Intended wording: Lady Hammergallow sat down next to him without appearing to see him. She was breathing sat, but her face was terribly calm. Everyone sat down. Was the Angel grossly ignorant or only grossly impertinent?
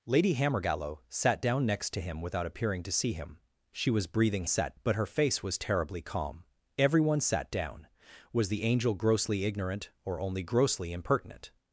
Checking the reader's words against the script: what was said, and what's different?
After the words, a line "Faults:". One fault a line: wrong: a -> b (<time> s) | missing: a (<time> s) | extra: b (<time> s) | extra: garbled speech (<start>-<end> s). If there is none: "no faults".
Lady Hammergallow sat down next to him without appearing to see him. She was breathing sat, but her face was terribly calm. Everyone sat down. Was the Angel grossly ignorant or only grossly impertinent?
Faults:
no faults